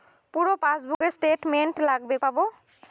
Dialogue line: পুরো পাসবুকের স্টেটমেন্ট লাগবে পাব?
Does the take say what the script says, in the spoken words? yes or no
yes